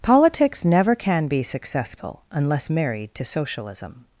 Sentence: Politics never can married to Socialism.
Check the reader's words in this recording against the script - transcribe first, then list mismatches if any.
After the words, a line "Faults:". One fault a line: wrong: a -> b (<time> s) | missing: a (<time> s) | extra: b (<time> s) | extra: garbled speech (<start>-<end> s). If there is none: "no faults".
Politics never can be successful unless married to Socialism.
Faults:
extra: be successful unless (1.3 s)